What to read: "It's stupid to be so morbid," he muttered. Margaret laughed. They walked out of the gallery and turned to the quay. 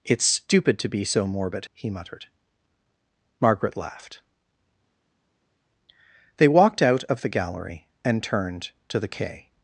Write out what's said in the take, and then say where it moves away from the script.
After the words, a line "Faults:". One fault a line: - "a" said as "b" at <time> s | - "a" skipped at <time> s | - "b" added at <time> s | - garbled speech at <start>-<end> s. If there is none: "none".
"It's stupid to be so morbid," he muttered. Margaret laughed. They walked out of the gallery and turned to the quay.
Faults:
none